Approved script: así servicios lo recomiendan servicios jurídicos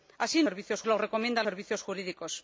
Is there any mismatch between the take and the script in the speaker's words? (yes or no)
no